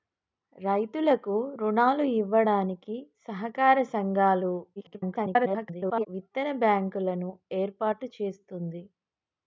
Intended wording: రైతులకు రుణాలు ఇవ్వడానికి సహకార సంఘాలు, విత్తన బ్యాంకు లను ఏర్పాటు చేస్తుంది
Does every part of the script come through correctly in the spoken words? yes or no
no